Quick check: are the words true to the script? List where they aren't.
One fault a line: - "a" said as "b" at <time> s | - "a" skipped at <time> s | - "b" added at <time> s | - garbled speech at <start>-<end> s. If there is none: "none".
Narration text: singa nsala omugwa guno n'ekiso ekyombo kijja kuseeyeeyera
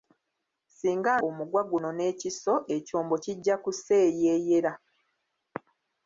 - "nsala" skipped at 1.1 s